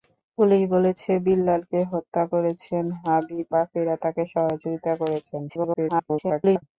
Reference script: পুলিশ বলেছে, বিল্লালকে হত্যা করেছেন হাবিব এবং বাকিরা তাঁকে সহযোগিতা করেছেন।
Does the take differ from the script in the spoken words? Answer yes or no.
yes